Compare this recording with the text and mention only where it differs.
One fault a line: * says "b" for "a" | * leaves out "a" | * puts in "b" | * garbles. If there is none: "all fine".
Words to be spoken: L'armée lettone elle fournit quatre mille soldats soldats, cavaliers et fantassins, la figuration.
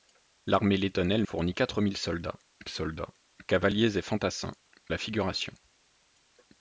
all fine